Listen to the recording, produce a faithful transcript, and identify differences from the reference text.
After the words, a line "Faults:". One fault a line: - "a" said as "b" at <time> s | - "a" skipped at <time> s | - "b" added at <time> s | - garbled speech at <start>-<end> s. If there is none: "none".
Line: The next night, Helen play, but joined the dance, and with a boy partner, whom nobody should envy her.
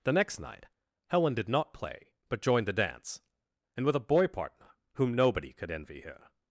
The next night, Helen did not play, but joined the dance, and with a boy partner, whom nobody could envy her.
Faults:
- "did not" added at 1.4 s
- "should" said as "could" at 5.5 s